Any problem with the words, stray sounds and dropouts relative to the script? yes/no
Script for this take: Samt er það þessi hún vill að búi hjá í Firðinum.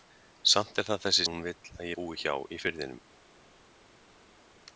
no